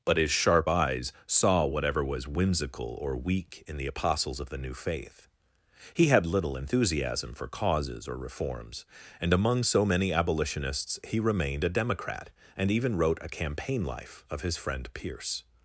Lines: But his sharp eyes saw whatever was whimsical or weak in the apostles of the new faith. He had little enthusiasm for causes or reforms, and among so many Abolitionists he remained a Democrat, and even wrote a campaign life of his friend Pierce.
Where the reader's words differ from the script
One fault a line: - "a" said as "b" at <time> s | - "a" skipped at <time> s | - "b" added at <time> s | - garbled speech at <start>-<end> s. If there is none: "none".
none